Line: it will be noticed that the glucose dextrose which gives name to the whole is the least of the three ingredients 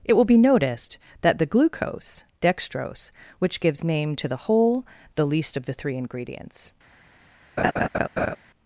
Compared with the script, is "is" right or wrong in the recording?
wrong